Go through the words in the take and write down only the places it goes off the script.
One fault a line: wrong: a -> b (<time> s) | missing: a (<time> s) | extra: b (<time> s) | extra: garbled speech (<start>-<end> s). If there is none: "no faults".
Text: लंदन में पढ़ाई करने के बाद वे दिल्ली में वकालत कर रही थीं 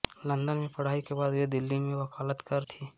missing: करने (1.0 s)
missing: रही (2.6 s)